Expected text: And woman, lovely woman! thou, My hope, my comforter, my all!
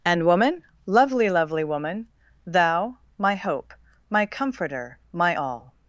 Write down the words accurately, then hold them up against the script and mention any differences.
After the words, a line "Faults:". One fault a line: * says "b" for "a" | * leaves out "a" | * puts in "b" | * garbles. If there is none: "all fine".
And woman, lovely lovely woman! thou, My hope, my comforter, my all!
Faults:
* puts in "lovely"